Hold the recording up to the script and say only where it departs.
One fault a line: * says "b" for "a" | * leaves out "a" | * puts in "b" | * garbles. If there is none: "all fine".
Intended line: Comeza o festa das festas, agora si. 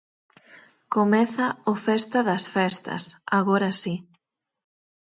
all fine